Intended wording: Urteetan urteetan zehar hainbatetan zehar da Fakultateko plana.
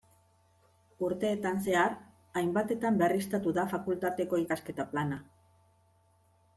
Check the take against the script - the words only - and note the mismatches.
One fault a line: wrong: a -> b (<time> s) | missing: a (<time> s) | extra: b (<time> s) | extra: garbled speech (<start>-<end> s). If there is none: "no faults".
missing: urteetan (1.6 s)
wrong: zehar -> berriztatu (3.0 s)
extra: ikasketa (4.4 s)